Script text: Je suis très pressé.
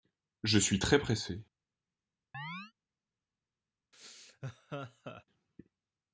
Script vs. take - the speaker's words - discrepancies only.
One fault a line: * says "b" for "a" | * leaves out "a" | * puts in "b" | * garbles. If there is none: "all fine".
all fine